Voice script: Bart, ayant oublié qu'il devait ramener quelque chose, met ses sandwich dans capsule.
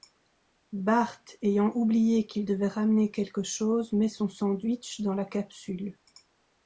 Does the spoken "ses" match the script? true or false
false